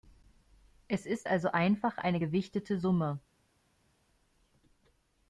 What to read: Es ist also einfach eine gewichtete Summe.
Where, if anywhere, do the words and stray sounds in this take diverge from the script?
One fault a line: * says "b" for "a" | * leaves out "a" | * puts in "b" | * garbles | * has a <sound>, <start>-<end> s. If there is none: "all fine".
all fine